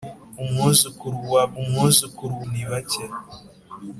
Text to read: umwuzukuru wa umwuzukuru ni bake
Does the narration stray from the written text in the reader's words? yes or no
no